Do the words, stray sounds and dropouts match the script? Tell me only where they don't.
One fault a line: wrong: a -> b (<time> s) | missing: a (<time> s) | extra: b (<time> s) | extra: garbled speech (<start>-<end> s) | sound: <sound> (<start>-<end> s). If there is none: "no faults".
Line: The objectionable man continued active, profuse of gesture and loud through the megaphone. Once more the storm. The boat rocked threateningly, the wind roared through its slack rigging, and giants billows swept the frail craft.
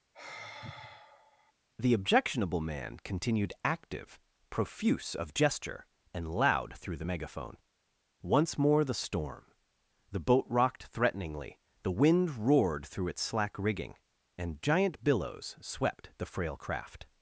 sound: sigh (0.1-1.5 s)
wrong: giants -> giant (14.6 s)